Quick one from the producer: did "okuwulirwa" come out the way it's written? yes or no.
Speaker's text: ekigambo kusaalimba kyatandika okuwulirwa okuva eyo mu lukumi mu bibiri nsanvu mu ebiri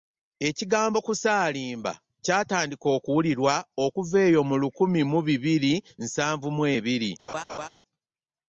yes